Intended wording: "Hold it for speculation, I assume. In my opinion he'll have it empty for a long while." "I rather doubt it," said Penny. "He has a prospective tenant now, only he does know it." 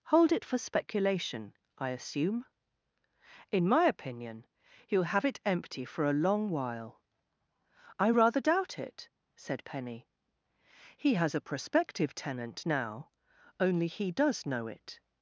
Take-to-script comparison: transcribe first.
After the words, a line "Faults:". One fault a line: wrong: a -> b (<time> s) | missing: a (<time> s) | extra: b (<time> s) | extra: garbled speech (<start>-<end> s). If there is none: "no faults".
"Hold it for speculation, I assume. In my opinion he'll have it empty for a long while." "I rather doubt it," said Penny. "He has a prospective tenant now, only he does know it."
Faults:
no faults